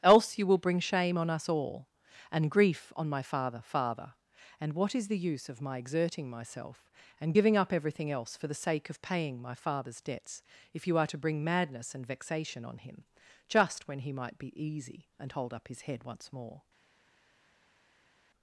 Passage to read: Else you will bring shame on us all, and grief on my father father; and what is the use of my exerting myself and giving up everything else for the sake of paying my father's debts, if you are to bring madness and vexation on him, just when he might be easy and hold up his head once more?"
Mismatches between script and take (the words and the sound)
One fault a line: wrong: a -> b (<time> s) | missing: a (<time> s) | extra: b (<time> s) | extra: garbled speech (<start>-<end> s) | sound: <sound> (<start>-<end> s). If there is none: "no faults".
no faults